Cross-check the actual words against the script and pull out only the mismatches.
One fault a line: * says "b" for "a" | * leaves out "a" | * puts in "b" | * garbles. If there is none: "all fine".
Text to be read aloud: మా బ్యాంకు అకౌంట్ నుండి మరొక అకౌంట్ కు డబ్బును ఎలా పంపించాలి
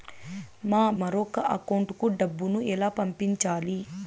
* leaves out "బ్యాంకు అకౌంట్ నుండి"